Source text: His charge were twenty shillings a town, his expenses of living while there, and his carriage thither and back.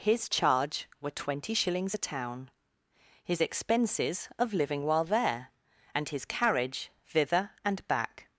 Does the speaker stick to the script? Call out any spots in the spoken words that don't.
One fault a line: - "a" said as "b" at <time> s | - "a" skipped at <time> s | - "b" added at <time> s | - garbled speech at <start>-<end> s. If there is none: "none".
none